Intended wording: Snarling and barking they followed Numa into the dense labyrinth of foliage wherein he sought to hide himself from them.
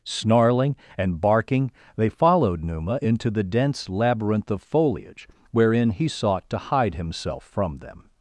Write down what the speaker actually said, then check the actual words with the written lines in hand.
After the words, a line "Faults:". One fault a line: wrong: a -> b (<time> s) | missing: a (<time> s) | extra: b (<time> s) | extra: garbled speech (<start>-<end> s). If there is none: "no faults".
Snarling and barking they followed Numa into the dense labyrinth of foliage wherein he sought to hide himself from them.
Faults:
no faults